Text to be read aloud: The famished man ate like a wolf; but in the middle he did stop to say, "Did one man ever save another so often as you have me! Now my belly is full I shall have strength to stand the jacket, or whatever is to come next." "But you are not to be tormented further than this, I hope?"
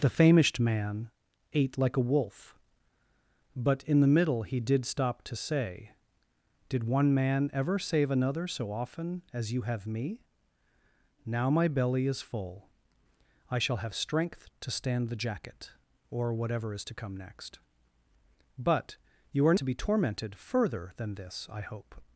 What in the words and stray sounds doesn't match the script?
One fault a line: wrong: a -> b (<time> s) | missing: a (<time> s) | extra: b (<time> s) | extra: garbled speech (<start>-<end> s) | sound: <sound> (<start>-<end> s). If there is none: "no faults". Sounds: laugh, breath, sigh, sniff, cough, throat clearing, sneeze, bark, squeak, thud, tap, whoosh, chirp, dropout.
missing: not (19.6 s)